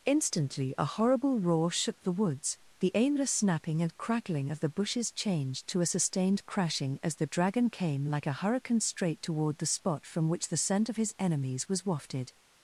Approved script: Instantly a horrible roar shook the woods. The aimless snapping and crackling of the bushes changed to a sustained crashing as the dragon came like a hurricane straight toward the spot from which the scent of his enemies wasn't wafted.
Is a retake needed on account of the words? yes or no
yes